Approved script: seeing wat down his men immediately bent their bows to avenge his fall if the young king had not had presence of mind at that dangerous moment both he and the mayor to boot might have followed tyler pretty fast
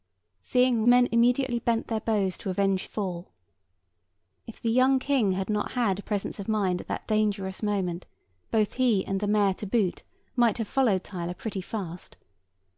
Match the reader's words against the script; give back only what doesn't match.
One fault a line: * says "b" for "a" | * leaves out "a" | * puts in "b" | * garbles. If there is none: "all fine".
* leaves out "wat down his"
* leaves out "his"